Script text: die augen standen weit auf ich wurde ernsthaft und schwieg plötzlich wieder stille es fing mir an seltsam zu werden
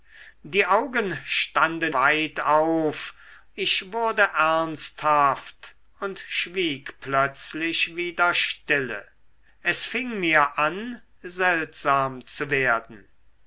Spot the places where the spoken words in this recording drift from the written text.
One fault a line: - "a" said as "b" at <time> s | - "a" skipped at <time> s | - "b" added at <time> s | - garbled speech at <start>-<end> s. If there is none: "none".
none